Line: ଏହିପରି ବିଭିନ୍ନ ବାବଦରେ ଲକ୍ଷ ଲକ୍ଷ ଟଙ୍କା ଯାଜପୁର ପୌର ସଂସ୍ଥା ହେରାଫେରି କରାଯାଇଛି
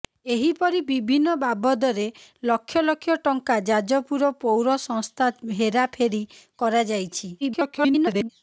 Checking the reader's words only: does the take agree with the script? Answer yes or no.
no